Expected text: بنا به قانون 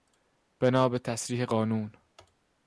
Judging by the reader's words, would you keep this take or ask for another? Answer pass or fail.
fail